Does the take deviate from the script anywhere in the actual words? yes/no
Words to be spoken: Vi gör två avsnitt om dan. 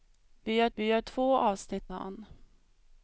yes